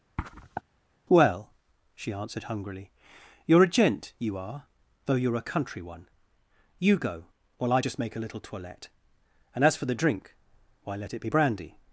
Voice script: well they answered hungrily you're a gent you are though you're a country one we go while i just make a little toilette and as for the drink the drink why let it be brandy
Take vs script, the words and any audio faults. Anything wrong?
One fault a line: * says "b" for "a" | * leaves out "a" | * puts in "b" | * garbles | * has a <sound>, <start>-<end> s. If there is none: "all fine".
* has a sniff, 0.2-0.6 s
* says "she" for "they"
* says "you" for "we"
* leaves out "the drink"